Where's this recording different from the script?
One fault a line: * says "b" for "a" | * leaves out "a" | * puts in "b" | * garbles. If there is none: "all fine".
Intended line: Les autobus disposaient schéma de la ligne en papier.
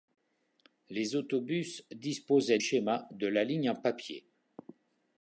all fine